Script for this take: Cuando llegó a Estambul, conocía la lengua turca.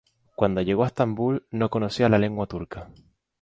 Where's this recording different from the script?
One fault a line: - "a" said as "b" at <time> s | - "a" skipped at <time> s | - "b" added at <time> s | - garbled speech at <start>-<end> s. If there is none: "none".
- "no" added at 1.5 s